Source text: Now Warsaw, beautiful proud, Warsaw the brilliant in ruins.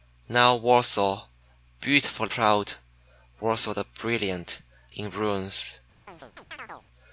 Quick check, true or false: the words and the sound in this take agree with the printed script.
false